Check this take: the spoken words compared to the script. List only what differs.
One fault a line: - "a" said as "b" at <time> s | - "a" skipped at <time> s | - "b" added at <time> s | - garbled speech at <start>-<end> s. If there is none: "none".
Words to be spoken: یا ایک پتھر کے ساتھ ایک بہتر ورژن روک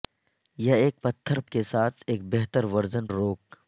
none